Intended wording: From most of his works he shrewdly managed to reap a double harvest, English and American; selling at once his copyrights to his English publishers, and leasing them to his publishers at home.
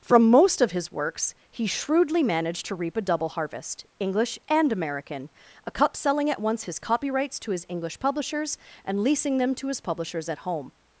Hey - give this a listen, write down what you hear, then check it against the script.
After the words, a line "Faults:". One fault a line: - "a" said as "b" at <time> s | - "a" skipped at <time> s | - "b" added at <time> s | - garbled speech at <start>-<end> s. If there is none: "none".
From most of his works he shrewdly managed to reap a double harvest, English and American; a cup selling at once his copyrights to his English publishers, and leasing them to his publishers at home.
Faults:
- "a cup" added at 5.7 s